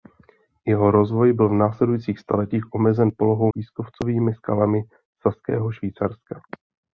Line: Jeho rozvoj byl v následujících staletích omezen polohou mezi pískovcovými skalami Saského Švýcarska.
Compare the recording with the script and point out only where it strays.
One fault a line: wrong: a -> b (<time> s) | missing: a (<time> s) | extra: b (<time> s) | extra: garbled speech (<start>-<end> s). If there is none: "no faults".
missing: mezi (3.5 s)